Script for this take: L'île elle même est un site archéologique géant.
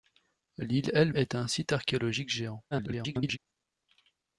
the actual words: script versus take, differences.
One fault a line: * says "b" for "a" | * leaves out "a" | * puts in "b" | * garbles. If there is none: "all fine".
* leaves out "même"
* garbles